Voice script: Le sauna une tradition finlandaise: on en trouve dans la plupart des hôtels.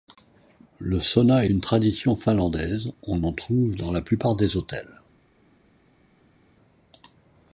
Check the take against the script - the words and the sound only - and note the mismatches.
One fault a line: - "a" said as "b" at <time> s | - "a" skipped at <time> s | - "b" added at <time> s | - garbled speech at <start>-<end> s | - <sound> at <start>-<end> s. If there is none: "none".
none